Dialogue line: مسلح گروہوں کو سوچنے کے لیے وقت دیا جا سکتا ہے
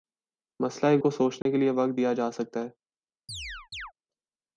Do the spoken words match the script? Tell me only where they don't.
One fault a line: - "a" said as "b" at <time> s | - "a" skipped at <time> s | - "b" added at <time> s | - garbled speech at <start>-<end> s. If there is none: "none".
- "گروہوں" skipped at 0.9 s